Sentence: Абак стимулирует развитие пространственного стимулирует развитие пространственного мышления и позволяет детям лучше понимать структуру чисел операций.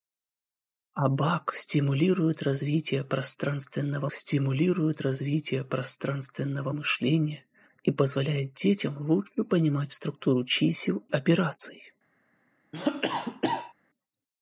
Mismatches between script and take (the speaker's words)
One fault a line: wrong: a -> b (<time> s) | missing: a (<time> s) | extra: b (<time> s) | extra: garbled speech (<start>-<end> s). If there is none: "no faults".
no faults